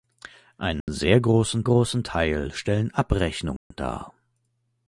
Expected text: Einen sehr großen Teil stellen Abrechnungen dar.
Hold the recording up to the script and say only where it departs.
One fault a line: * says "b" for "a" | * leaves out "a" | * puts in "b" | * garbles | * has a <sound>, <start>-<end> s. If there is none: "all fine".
* has a dropout, 0.8-0.9 s
* puts in "großen"
* has a dropout, 3.6-3.7 s